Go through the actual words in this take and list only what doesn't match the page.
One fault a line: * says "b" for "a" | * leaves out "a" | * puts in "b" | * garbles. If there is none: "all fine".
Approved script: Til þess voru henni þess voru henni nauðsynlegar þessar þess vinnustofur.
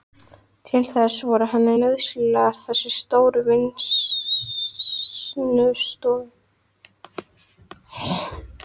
* leaves out "þess voru henni"
* says "stóru" for "þess"